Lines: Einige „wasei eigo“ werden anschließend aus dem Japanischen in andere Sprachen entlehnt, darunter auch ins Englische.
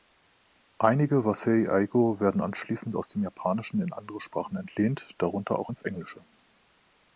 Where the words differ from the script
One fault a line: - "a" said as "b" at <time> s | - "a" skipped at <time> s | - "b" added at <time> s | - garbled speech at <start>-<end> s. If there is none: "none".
none